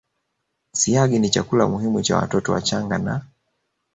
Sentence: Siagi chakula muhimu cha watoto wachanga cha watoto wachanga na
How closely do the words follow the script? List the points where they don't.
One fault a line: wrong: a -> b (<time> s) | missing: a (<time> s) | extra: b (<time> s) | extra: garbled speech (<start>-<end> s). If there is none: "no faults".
extra: ni (1.2 s)
missing: cha watoto wachanga (3.0 s)